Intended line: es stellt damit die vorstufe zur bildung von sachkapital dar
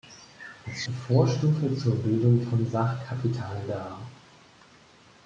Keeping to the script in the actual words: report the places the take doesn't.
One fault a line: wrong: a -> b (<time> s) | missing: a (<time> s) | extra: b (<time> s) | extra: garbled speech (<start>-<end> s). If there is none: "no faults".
missing: stellt damit (0.8 s)